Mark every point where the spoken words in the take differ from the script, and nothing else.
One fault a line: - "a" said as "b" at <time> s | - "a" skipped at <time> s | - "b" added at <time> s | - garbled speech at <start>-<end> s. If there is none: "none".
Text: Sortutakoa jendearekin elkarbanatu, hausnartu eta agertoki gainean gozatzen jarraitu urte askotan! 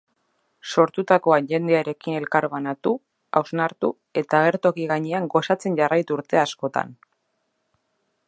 none